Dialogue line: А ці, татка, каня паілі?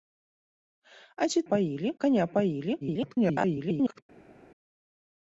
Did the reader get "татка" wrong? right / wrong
wrong